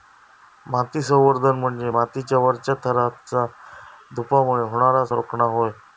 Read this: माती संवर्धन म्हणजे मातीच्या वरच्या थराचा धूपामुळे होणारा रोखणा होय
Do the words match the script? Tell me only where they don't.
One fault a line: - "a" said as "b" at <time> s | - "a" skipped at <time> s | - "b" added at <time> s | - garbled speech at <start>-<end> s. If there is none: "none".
none